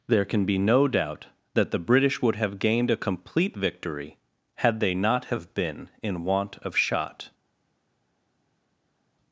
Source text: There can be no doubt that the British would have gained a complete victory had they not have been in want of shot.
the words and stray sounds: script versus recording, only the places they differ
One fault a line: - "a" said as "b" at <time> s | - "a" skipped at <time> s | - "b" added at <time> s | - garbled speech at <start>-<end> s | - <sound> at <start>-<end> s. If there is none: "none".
none